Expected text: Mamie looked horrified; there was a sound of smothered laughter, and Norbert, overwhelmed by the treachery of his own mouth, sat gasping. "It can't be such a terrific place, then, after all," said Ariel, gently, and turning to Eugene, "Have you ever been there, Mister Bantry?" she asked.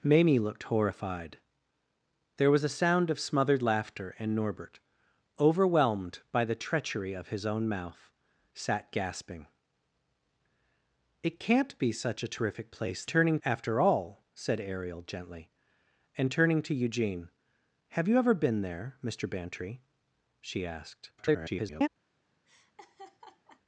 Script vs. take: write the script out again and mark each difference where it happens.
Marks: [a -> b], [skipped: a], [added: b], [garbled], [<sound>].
Mamie looked horrified; there was a sound of smothered laughter, and Norbert, overwhelmed by the treachery of his own mouth, sat gasping. "It can't be such a terrific place, [then, -> turning] after all," said Ariel, gently, and turning to Eugene, "Have you ever been there, Mister Bantry?" she asked. [garbled] [laugh]